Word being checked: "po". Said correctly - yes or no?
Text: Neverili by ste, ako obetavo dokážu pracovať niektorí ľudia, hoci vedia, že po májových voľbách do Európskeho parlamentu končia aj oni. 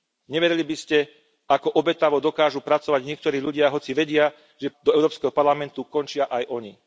no